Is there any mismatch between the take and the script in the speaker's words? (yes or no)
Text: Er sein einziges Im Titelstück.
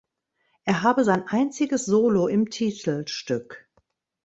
yes